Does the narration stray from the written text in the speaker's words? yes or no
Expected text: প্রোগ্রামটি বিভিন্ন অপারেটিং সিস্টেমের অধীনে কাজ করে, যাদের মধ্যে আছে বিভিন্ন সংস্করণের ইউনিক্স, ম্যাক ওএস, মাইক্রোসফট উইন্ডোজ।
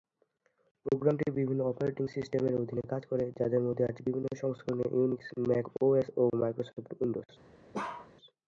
yes